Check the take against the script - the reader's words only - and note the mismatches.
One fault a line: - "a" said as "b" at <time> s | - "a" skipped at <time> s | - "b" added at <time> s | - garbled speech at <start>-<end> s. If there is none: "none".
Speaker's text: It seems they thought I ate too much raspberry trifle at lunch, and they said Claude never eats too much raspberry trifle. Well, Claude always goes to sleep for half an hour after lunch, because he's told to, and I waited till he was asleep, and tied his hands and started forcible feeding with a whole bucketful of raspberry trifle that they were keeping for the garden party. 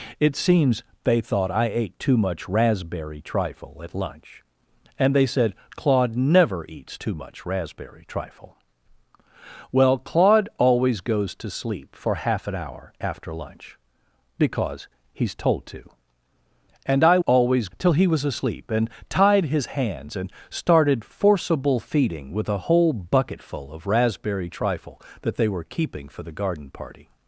- "waited" said as "always" at 17.2 s